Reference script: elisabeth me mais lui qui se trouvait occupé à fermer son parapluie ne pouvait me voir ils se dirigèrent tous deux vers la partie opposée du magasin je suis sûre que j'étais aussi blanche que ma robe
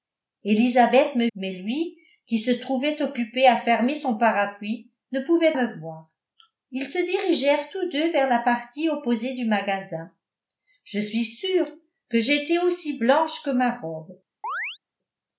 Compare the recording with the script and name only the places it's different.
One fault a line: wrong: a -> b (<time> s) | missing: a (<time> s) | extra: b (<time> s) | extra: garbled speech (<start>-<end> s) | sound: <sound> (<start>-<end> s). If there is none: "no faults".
sound: chirp (14.4-14.8 s)